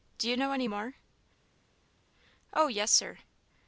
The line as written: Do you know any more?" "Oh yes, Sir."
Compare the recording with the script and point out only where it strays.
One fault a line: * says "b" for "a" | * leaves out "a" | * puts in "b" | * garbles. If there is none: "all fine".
all fine